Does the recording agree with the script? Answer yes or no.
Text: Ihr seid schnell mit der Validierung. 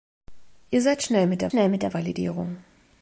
no